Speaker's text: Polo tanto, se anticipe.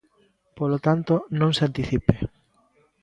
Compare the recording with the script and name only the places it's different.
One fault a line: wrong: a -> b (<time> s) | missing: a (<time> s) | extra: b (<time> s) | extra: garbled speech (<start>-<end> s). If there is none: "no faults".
extra: non (1.4 s)